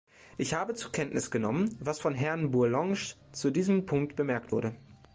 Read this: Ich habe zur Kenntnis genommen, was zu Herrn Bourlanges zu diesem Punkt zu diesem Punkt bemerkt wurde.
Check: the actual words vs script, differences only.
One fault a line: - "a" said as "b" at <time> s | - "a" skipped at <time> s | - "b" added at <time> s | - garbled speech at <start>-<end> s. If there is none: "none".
- "zu" said as "von" at 2.0 s
- "zu diesem Punkt" skipped at 4.2 s